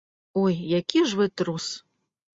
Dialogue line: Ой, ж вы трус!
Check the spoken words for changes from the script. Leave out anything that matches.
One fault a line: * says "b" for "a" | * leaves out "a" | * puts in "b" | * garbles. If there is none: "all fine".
* puts in "які"